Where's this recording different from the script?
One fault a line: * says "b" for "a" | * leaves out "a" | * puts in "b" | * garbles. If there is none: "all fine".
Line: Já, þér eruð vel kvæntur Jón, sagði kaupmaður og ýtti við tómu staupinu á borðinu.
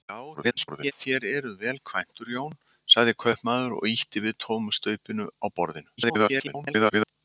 * garbles
* garbles